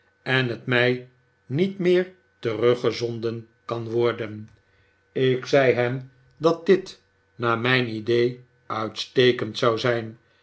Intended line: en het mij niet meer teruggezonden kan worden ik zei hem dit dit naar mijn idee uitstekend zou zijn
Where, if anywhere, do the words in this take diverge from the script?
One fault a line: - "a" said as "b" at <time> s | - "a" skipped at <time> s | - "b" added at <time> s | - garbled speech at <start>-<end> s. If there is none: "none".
- "dit" said as "dat" at 6.4 s